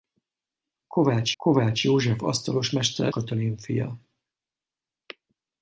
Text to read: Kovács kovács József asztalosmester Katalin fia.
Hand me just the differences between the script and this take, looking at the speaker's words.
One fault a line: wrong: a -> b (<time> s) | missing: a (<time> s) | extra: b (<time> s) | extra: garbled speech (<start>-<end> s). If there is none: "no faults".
no faults